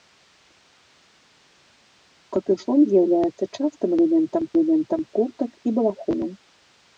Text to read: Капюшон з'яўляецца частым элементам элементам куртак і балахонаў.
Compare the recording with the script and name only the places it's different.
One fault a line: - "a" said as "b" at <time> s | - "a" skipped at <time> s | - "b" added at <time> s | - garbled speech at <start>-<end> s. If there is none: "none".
none